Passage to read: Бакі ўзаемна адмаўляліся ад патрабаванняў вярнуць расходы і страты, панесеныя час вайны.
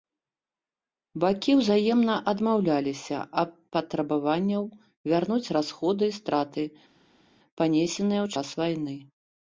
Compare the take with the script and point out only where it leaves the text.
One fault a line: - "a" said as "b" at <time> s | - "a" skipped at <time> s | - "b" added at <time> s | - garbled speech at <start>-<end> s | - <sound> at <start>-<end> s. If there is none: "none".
- "ў" added at 8.3 s